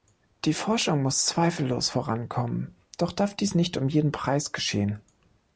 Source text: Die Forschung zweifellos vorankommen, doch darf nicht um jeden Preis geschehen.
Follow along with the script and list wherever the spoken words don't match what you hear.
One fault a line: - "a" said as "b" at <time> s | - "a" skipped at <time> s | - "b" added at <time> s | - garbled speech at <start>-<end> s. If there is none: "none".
- "muss" added at 1.0 s
- "dies" added at 3.4 s